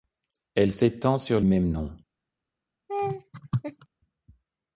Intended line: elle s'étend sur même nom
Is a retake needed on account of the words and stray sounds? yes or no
yes